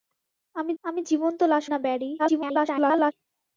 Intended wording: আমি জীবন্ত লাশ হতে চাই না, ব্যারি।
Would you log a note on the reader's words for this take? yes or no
yes